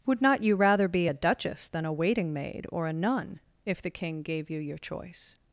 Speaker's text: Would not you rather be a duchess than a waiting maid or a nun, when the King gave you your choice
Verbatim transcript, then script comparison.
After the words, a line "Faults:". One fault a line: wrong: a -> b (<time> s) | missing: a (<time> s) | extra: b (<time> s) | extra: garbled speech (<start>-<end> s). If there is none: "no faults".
Would not you rather be a duchess than a waiting maid or a nun, if the King gave you your choice
Faults:
wrong: when -> if (3.6 s)